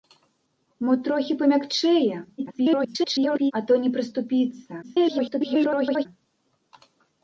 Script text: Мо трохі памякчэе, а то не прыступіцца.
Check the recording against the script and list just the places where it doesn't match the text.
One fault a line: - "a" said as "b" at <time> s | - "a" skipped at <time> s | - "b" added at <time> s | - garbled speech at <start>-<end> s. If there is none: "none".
- garbled speech at 2.4-3.5 s
- garbled speech at 4.8-6.1 s